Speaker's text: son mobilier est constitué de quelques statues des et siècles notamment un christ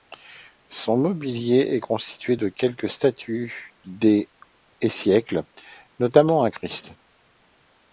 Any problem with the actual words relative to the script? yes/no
no